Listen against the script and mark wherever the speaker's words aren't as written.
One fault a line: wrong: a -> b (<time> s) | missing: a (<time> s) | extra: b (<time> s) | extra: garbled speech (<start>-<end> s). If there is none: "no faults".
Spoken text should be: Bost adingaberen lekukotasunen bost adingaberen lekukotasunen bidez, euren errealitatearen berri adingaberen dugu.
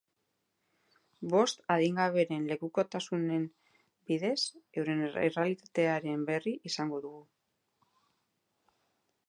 missing: bost adingaberen lekukotasunen (3.5 s)
wrong: adingaberen -> izango (6.7 s)